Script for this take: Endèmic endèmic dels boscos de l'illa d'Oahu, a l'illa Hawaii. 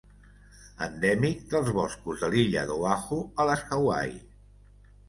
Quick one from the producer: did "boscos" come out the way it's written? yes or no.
yes